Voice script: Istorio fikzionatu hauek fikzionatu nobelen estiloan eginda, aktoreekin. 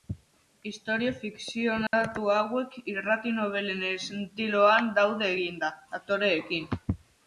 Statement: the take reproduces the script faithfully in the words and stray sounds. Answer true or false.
false